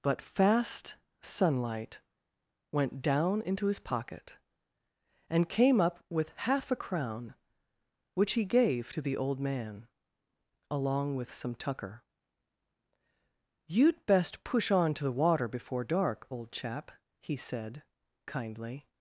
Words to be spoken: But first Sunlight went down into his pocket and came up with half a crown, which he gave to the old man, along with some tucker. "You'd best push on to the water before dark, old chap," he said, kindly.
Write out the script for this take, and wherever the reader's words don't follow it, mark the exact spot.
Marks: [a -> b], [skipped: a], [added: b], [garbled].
But [first -> fast] Sunlight went down into his pocket and came up with half a crown, which he gave to the old man, along with some tucker. "You'd best push on to the water before dark, old chap," he said, kindly.